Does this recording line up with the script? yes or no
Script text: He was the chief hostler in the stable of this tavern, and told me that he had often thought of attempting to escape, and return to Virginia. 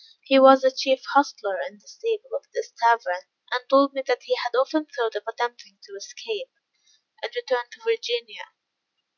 yes